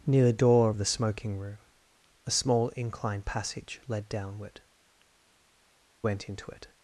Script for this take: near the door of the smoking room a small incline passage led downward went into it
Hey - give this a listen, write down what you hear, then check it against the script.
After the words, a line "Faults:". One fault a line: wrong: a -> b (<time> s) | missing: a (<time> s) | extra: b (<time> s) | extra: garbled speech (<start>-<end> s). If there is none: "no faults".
near the door of the smoking room a small incline passage led downward went into it
Faults:
no faults